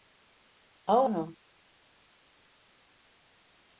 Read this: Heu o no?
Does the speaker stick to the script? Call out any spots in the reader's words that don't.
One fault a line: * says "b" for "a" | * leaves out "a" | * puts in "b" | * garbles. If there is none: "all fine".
all fine